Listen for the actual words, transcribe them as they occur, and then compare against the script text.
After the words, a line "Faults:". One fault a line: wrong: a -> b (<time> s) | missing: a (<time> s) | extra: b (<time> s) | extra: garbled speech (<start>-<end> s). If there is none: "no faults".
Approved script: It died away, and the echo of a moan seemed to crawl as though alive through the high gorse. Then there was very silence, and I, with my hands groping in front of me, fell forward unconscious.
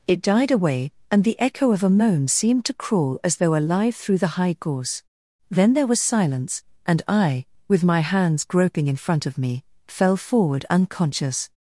It died away, and the echo of a moan seemed to crawl as though alive through the high gorse. Then there was silence, and I, with my hands groping in front of me, fell forward unconscious.
Faults:
missing: very (6.0 s)